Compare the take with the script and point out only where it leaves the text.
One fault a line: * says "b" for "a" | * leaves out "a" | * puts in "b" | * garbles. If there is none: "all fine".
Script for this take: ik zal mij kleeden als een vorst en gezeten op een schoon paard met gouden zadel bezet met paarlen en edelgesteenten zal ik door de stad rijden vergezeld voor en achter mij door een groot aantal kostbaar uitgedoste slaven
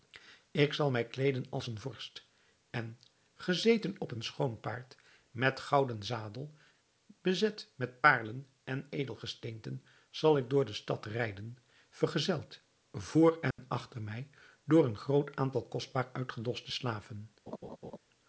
all fine